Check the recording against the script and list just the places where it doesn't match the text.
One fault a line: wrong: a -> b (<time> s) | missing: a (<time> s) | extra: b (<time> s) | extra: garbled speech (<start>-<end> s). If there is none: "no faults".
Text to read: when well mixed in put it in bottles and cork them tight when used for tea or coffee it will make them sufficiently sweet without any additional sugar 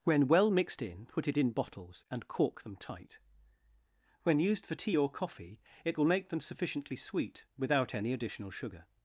no faults